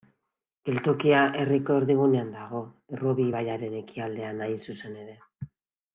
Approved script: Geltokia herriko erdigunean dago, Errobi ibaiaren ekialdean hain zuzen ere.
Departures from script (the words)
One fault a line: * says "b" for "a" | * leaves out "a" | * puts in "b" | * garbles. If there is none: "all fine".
all fine